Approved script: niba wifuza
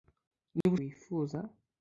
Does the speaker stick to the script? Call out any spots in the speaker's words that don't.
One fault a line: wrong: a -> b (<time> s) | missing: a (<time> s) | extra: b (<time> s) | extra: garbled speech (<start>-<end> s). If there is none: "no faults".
no faults